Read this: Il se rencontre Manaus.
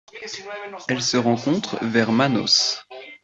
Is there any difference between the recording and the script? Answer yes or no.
yes